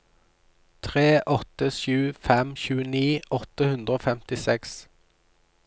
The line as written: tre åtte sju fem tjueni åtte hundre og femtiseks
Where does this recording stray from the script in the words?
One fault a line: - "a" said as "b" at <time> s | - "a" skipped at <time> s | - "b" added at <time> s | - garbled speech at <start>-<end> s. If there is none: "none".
none